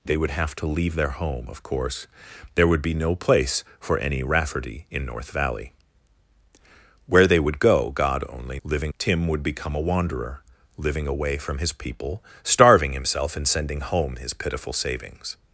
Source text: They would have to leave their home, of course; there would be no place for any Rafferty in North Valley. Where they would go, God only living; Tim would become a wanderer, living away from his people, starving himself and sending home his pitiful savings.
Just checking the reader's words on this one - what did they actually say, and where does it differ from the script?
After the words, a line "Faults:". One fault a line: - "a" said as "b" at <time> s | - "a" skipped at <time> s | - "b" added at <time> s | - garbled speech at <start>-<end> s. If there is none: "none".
They would have to leave their home, of course; there would be no place for any Rafferty in North Valley. Where they would go, God only living; Tim would become a wanderer, living away from his people, starving himself and sending home his pitiful savings.
Faults:
none